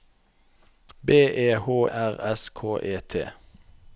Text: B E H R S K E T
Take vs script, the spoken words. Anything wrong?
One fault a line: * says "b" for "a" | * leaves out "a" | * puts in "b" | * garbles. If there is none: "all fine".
all fine